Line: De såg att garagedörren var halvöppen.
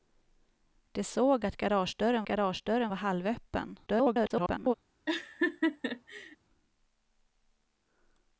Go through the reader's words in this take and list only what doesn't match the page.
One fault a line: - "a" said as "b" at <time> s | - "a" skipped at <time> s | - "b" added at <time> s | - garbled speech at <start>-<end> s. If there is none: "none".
- "garagedörren" added at 2.2 s
- garbled speech at 3.9-4.7 s